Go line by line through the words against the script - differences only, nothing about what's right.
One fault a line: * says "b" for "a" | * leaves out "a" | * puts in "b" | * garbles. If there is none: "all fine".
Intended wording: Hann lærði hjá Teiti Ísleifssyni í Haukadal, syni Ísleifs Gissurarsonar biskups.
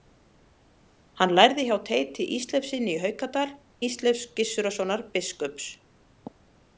* leaves out "syni"